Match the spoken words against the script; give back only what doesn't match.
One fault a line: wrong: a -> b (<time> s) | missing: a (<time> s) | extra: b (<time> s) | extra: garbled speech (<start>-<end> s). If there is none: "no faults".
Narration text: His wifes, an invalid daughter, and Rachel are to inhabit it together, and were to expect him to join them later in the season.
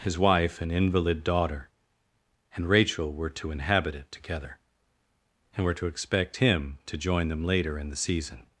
wrong: wifes -> wife (0.2 s)
wrong: are -> were (3.1 s)